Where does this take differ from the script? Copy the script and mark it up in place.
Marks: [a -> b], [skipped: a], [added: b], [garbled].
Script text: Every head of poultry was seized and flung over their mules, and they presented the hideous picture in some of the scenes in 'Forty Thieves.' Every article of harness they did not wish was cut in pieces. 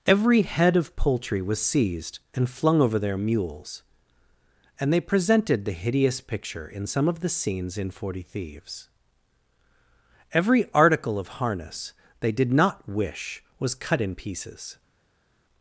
Every head of poultry was seized and flung over their mules, and they presented the hideous picture in some of the scenes in 'Forty Thieves.' Every article of harness they did not wish was cut in pieces.